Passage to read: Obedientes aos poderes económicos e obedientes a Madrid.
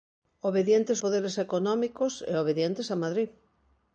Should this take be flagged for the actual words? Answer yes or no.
yes